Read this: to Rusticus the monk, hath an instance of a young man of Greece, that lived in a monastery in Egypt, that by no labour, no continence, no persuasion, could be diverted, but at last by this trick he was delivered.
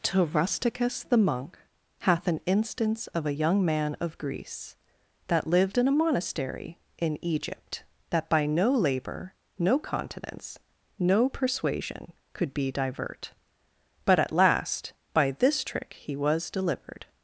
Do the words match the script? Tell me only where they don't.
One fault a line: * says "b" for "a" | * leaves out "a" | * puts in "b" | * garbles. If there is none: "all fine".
* says "divert" for "diverted"